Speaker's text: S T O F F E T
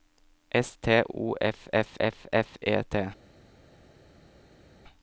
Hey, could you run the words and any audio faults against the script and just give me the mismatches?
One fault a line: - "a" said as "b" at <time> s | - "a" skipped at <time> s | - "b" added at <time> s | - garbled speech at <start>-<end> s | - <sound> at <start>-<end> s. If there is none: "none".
- "F F" added at 2.0 s